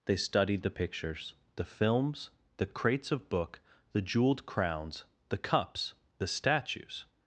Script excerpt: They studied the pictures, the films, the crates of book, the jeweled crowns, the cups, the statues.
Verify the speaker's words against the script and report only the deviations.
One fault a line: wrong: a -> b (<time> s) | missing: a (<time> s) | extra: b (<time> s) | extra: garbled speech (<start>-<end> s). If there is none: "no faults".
no faults